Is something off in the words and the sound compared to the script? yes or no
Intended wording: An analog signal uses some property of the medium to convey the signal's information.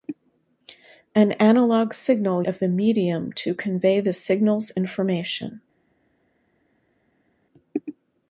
yes